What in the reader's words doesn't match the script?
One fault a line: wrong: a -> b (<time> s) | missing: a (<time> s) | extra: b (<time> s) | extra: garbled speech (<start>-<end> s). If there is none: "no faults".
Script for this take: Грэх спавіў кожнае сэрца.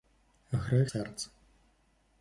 missing: спавіў кожнае (0.9 s)